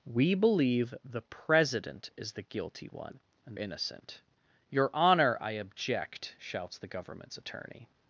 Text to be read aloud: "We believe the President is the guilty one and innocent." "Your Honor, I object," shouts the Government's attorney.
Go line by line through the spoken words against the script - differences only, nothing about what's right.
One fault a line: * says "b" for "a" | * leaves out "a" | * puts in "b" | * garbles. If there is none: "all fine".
all fine